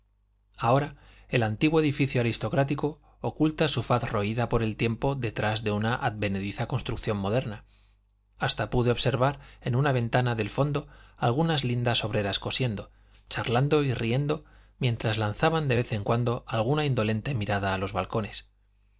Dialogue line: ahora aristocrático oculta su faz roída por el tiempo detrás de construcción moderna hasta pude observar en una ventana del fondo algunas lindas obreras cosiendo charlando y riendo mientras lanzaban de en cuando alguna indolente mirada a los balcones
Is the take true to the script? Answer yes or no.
no